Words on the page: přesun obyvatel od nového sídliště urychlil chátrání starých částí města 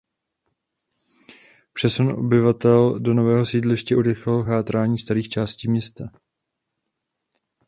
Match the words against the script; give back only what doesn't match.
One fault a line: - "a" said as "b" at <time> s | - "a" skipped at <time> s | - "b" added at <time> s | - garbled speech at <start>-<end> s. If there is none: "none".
- "od" said as "do" at 3.0 s